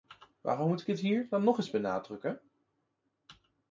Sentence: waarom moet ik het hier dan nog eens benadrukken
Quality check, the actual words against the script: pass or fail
pass